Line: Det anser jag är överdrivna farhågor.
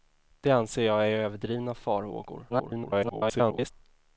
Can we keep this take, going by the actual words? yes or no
no